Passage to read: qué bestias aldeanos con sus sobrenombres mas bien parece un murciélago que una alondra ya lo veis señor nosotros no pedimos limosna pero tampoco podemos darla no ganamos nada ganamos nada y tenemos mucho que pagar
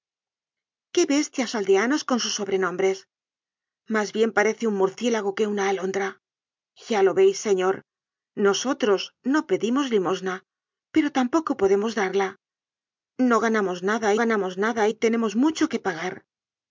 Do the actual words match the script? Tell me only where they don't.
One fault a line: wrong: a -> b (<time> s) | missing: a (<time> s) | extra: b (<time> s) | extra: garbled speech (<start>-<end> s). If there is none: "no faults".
no faults